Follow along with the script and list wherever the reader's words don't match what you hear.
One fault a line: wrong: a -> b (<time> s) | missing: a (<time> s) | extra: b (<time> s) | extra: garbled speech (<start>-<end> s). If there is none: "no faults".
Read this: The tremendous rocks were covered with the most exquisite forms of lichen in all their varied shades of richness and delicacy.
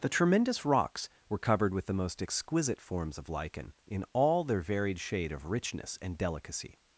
wrong: shades -> shade (5.0 s)